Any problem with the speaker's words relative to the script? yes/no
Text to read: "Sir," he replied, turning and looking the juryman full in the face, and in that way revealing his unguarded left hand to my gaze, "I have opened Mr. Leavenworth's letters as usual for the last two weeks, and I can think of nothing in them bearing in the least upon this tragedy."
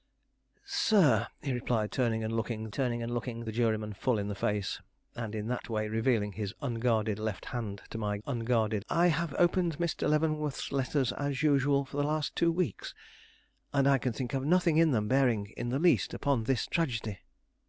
yes